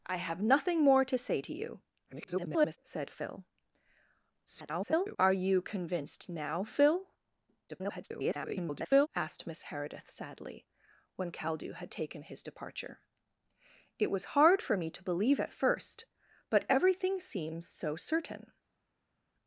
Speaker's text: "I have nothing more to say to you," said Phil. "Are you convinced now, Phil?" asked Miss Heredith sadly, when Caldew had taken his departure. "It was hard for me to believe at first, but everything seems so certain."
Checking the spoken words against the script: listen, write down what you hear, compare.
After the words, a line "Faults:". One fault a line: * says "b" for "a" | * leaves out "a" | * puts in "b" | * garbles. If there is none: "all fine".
"I have nothing more to say to you," [garbled] said Phil. [garbled] "Are you convinced now, Phil?" [garbled] asked Miss Heredith sadly, when Caldew had taken his departure. "It was hard for me to believe at first, but everything seems so certain."
Faults:
* garbles
* garbles
* garbles